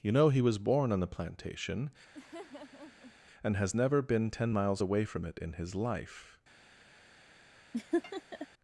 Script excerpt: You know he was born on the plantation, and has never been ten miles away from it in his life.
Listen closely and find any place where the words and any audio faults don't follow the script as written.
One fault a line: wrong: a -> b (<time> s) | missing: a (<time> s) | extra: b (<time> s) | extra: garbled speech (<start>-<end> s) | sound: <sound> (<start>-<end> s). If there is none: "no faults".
sound: laugh (2.1-3.2 s)
sound: laugh (7.7-8.5 s)